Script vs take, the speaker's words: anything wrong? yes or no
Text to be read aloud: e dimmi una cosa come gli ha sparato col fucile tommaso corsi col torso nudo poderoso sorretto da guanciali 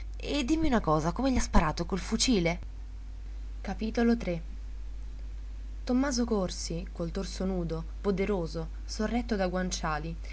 no